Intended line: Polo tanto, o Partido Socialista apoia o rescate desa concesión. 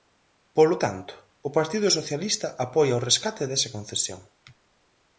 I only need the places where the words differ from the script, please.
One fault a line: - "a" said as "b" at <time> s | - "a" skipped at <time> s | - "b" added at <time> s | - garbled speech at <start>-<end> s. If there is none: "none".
none